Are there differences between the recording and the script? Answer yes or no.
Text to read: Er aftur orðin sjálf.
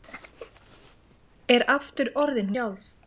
no